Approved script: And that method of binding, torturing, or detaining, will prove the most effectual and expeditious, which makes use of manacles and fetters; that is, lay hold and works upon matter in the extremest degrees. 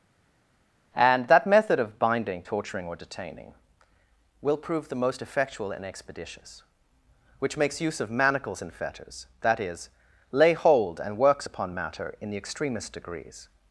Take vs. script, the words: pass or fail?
pass